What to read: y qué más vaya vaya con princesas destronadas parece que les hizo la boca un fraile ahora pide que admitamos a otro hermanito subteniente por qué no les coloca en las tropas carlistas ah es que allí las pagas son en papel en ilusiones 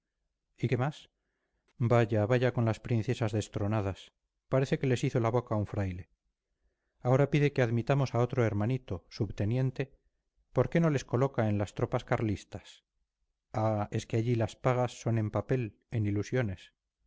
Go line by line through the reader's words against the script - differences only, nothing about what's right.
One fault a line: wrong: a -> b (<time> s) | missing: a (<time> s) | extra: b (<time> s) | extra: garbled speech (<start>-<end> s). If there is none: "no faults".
extra: las (2.6 s)